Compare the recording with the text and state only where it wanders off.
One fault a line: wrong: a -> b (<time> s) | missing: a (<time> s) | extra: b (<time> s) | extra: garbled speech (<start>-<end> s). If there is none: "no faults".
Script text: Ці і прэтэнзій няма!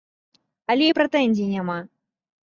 wrong: Ці -> Але (0.8 s)